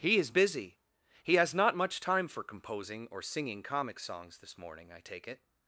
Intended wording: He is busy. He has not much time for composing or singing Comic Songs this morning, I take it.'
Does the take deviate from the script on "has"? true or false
false